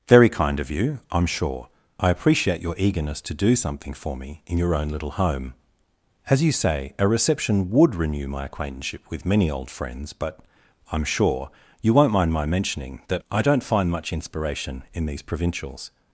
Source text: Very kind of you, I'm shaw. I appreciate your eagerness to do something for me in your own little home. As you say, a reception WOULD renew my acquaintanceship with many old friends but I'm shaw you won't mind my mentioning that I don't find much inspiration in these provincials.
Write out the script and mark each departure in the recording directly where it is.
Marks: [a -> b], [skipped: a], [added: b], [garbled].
Very kind of you, I'm [shaw. -> sure] I appreciate your eagerness to do something for me in your own little home. As you say, a reception WOULD renew my acquaintanceship with many old friends but I'm [shaw -> sure] you won't mind my mentioning that I don't find much inspiration in these provincials.